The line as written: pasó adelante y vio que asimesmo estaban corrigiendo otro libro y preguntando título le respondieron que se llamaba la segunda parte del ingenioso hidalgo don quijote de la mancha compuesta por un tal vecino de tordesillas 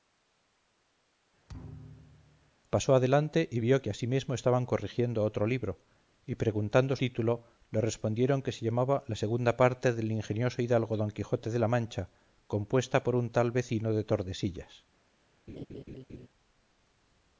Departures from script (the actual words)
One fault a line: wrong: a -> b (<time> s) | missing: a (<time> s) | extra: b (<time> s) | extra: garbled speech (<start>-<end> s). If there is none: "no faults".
no faults